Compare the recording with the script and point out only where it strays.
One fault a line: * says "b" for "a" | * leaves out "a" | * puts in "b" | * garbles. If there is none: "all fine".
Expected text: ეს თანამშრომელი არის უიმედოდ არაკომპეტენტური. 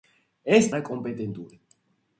* leaves out "თანამშრომელი არის უიმედოდ"